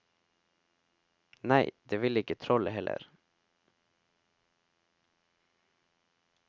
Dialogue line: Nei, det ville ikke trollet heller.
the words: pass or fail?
pass